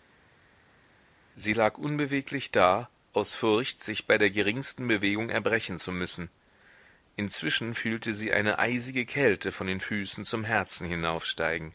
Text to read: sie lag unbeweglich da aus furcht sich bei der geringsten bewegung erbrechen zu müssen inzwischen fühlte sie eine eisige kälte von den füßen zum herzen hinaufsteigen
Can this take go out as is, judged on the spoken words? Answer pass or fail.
pass